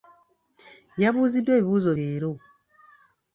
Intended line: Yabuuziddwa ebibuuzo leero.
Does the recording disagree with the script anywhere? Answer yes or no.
no